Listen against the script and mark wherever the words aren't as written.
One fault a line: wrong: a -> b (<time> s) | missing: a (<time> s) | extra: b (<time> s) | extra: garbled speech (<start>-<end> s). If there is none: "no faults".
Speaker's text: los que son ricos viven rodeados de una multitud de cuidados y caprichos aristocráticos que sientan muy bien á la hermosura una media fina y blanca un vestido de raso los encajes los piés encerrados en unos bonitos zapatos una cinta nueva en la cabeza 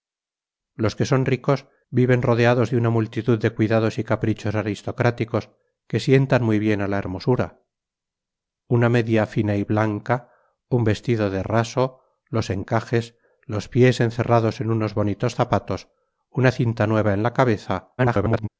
extra: garbled speech (18.0-18.5 s)